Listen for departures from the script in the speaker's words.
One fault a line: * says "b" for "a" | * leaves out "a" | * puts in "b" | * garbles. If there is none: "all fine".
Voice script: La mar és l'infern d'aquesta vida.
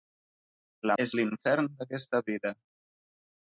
* leaves out "mar"